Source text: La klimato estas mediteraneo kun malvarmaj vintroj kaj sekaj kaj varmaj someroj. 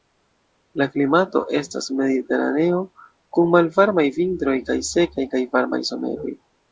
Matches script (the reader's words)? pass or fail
pass